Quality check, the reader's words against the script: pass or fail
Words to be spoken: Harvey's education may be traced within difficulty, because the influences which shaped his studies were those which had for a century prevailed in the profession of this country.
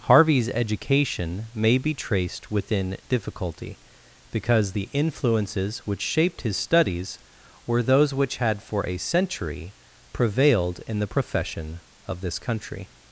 pass